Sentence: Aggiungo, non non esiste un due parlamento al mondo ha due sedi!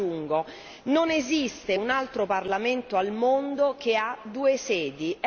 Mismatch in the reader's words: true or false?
true